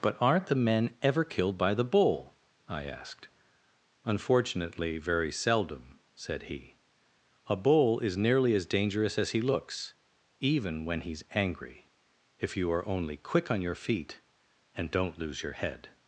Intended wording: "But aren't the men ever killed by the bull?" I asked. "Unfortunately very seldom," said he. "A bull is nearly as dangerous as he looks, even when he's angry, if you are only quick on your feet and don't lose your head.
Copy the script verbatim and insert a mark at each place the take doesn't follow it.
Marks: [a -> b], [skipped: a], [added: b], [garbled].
"But aren't the men ever killed by the bull?" I asked. "Unfortunately very seldom," said he. "A bull is nearly as dangerous as he looks, even when he's angry, if you are only quick on your feet and don't lose your head.